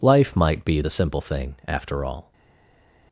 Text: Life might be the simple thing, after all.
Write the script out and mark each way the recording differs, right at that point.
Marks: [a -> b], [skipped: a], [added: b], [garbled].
Life might be the simple thing, after all.